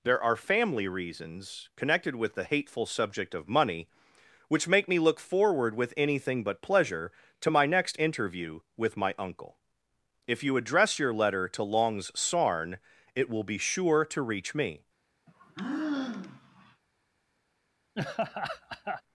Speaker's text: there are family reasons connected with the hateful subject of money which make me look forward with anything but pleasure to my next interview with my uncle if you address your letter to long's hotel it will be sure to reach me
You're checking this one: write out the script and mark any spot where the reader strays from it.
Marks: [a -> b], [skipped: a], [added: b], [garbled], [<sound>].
there are family reasons connected with the hateful subject of money which make me look forward with anything but pleasure to my next interview with my uncle if you address your letter to long's [hotel -> sarn] it will be sure to reach me [sigh] [laugh]